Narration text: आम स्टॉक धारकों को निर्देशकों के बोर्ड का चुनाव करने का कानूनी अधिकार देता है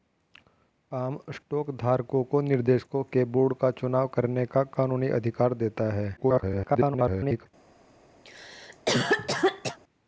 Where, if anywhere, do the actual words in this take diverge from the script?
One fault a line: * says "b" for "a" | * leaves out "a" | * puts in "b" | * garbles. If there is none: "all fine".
* garbles